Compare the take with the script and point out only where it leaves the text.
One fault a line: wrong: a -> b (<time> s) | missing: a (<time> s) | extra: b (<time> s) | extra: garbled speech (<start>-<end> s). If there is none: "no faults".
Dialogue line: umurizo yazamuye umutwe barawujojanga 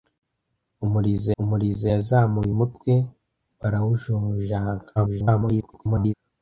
extra: umurizo (1.4 s)
extra: garbled speech (5.0-6.1 s)